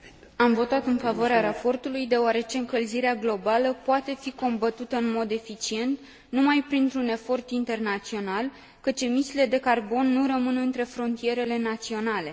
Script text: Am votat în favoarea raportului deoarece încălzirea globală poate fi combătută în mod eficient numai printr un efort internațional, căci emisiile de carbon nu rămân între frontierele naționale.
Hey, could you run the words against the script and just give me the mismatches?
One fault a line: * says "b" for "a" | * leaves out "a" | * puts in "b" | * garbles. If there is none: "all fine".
all fine